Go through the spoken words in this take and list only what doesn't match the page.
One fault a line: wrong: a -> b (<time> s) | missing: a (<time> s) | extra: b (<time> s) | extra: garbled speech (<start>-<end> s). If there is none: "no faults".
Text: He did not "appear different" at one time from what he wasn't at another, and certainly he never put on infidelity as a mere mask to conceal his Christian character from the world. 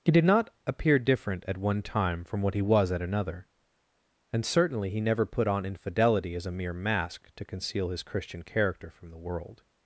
wrong: wasn't -> was (2.6 s)